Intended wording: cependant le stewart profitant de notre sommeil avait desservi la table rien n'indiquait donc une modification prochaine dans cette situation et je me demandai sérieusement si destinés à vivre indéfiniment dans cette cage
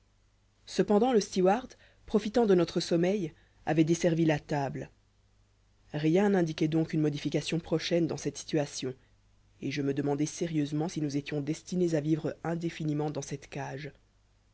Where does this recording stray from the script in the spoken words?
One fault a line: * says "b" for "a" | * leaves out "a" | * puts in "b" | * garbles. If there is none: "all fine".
* puts in "nous étions"